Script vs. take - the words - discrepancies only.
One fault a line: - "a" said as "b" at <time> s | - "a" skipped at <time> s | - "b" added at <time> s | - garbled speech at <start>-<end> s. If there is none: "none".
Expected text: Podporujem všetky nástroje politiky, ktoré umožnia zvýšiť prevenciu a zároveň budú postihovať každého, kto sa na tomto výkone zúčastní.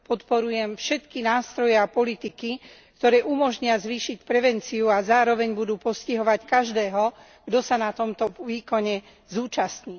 - "a" added at 1.7 s